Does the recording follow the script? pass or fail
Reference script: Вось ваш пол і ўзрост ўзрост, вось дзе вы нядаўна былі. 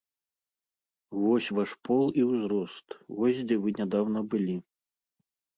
fail